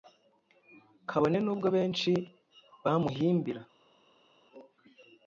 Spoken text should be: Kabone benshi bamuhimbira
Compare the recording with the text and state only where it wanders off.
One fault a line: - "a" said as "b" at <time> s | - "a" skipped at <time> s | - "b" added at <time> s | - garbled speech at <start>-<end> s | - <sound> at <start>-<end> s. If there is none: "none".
- "nubwo" added at 1.4 s